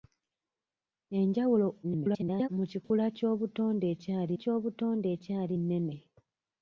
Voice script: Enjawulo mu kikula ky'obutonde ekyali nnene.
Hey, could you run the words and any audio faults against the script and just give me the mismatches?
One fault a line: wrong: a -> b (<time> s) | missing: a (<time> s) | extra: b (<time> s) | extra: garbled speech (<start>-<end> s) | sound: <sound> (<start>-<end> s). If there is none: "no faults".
extra: garbled speech (1.8-2.5 s)
sound: dropout (2.8-2.9 s)
extra: ky'obutonde ekyali (4.4 s)